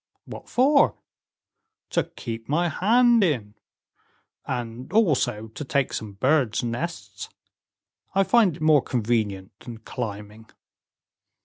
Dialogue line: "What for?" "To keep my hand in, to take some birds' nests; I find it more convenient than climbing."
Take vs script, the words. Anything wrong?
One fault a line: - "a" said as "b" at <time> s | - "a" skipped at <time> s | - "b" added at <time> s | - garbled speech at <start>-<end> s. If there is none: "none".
- "and also" added at 4.5 s